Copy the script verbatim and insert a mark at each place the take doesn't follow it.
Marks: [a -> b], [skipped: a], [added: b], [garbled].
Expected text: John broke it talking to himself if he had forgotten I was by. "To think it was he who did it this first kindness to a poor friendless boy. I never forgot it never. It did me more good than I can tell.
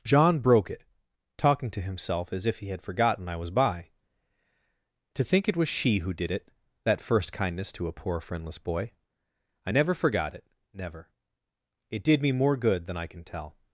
John broke it talking to himself [added: as] if he had forgotten I was by. "To think it was [he -> she] who did it [this -> that] first kindness to a poor friendless boy. I never forgot it never. It did me more good than I can tell.